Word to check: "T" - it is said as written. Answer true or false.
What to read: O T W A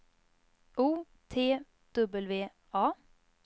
true